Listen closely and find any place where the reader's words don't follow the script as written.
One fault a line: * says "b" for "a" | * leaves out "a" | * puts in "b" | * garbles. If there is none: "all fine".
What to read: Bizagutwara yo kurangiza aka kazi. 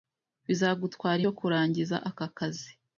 all fine